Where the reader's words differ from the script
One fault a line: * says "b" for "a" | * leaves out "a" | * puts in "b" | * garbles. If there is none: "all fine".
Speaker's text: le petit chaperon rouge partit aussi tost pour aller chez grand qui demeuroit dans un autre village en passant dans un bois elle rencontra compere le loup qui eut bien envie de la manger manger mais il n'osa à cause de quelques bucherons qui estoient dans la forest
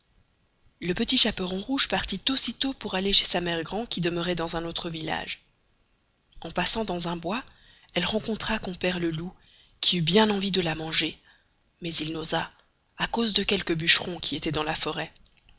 * puts in "sa mere"
* leaves out "manger"